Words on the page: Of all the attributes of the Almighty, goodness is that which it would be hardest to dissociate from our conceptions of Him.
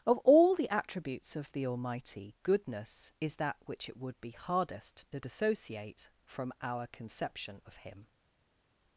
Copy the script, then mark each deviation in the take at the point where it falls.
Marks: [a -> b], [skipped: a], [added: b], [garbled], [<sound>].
Of all the attributes of the Almighty, goodness is that which it would be hardest to dissociate from our [conceptions -> conception] of Him.